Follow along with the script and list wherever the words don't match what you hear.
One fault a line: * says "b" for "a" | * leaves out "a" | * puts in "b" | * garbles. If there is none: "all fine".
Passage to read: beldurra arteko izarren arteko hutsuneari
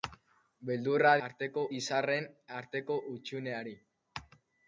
all fine